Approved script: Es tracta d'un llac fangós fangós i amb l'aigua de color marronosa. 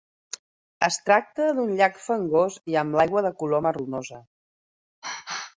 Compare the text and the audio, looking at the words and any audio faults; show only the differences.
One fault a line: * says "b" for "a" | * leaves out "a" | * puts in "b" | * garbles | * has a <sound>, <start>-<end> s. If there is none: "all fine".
* leaves out "fangós"